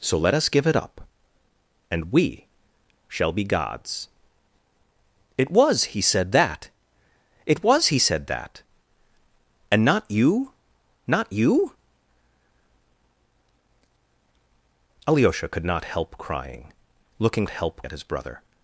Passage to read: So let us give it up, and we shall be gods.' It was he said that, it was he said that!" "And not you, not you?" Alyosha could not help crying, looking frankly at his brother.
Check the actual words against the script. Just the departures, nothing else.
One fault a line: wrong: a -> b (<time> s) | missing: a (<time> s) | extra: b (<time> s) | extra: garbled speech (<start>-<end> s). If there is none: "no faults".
wrong: frankly -> help (17.5 s)